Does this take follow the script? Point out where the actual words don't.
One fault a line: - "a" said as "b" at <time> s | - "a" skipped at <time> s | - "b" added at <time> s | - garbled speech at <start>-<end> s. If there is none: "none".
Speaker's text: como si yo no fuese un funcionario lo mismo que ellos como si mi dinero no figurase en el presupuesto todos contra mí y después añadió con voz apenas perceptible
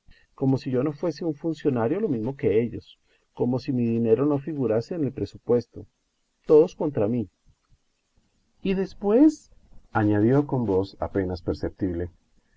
none